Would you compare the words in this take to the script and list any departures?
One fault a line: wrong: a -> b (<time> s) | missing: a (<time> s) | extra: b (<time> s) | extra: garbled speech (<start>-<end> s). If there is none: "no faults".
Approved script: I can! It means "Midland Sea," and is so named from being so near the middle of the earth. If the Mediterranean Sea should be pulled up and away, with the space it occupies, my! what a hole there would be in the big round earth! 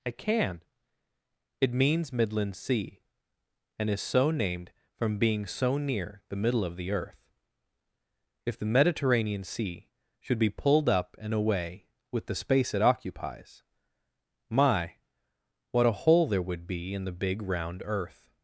no faults